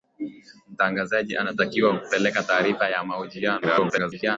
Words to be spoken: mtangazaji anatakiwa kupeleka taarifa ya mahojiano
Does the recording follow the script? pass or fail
fail